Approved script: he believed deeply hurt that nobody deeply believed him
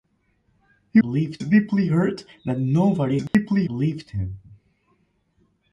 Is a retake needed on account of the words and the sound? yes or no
yes